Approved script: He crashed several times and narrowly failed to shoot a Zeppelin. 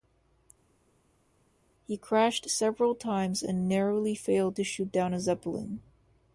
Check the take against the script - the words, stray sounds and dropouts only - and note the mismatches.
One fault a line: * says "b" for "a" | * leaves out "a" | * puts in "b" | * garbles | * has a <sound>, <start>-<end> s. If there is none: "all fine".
* puts in "down"